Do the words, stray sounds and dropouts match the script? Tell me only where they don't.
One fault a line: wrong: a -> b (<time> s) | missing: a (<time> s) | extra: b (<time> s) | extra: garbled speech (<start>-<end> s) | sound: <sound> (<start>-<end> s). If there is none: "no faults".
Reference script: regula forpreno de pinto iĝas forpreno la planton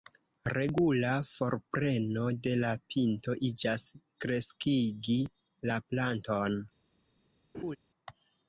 extra: la (2.6 s)
wrong: forpreno -> kreskigi (4.3 s)
sound: laugh (7.5-7.8 s)